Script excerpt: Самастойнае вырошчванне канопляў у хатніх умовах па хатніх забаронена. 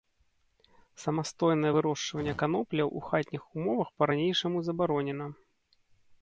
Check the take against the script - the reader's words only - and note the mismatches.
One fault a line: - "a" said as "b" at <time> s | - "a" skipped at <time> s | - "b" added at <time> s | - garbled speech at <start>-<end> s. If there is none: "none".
- "хатніх" said as "ранейшаму" at 4.1 s